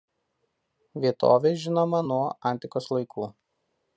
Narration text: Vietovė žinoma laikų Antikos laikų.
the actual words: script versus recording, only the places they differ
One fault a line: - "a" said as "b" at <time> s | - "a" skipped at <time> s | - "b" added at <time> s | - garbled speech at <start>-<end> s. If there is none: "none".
- "laikų" said as "nuo" at 2.1 s